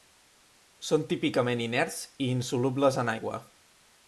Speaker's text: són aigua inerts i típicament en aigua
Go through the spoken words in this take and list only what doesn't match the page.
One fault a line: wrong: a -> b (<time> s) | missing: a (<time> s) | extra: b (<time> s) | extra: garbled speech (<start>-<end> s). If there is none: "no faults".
wrong: aigua -> típicament (1.1 s)
wrong: típicament -> insolubles (2.4 s)